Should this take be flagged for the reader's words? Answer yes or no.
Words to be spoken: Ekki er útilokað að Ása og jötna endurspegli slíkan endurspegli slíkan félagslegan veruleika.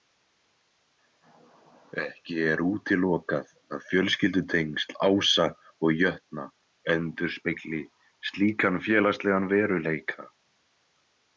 yes